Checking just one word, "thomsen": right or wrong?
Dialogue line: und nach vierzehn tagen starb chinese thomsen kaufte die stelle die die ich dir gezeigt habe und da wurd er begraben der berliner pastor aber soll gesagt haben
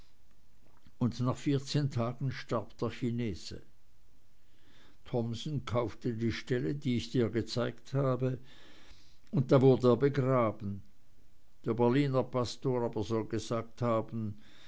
right